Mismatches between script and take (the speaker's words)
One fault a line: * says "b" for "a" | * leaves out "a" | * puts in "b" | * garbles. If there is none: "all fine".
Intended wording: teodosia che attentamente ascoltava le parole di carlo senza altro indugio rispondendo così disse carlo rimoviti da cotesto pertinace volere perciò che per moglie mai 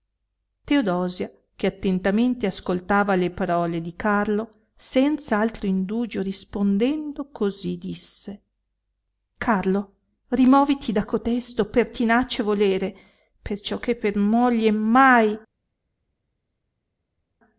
all fine